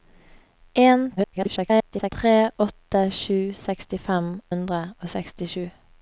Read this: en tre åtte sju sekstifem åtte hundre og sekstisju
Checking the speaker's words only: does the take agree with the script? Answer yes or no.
no